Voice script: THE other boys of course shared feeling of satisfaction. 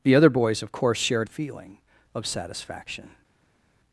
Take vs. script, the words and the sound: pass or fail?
pass